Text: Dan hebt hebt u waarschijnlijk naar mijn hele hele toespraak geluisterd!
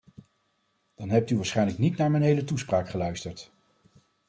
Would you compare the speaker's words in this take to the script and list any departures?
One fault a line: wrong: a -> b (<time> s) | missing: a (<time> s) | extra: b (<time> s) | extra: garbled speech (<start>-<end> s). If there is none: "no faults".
missing: hebt (1.3 s)
extra: niet (1.8 s)
missing: hele (2.4 s)